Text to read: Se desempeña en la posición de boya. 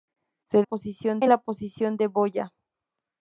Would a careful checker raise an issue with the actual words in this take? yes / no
yes